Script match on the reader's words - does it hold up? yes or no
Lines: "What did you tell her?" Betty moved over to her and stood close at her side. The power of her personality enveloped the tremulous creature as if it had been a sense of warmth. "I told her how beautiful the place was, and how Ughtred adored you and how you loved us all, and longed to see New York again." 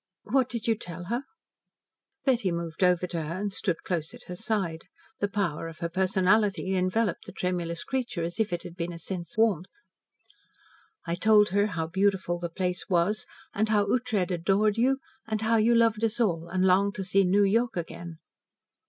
no